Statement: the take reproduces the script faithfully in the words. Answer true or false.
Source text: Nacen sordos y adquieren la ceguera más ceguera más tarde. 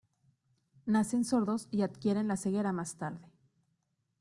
false